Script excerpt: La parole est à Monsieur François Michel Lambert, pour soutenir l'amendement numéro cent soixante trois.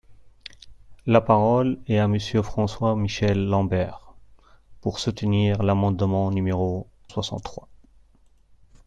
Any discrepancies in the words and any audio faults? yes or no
yes